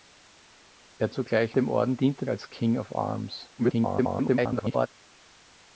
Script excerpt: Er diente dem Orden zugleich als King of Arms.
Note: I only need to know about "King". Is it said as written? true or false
true